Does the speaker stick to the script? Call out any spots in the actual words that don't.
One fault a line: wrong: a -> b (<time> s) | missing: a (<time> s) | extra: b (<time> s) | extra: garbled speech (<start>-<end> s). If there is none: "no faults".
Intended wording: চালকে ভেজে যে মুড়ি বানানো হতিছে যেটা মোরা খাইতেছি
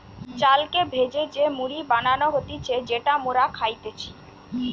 no faults